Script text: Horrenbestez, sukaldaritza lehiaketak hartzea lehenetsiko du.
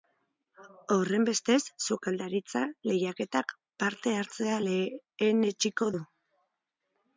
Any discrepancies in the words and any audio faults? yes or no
yes